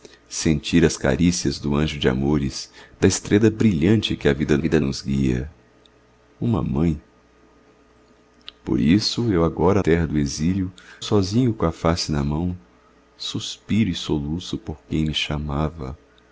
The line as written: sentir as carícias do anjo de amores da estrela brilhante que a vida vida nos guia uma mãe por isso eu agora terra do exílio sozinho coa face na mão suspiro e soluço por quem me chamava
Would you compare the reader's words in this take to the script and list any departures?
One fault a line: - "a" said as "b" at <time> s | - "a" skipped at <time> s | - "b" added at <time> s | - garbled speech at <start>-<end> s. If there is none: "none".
none